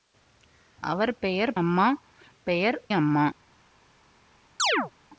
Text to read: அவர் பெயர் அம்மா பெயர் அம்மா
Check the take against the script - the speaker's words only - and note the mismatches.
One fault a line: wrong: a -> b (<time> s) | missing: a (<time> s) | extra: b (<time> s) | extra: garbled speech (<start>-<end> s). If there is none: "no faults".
no faults